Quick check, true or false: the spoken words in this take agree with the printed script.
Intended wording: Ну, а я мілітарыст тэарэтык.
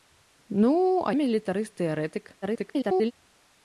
false